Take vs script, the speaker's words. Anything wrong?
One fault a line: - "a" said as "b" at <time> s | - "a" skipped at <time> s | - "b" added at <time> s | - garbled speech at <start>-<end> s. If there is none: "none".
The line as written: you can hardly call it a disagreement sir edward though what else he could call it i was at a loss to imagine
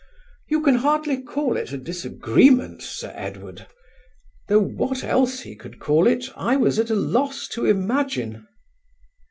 none